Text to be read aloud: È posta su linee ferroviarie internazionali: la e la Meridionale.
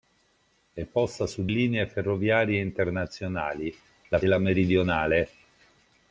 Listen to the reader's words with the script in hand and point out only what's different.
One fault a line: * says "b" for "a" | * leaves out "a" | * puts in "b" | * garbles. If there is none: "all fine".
all fine